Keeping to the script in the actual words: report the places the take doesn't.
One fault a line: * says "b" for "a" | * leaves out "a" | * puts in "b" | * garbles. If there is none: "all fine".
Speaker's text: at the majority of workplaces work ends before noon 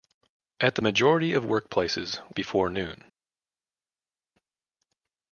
* leaves out "work ends"